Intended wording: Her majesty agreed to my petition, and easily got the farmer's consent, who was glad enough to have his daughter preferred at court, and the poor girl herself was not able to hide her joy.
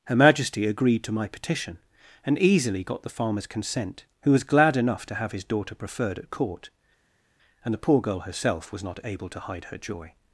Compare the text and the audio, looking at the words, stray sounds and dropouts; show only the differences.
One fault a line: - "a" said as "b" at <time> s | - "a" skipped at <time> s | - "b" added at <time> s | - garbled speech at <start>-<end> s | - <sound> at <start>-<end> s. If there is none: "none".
none